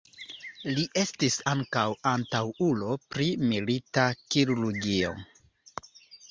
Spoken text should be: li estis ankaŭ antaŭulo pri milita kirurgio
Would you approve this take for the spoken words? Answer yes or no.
yes